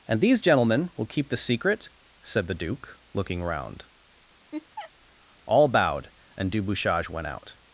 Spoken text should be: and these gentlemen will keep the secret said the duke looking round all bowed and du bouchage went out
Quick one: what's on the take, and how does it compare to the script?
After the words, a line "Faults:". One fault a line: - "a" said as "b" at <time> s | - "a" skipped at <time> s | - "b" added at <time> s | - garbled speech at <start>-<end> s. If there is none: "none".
and these gentlemen will keep the secret said the duke looking round all bowed and du bouchage went out
Faults:
none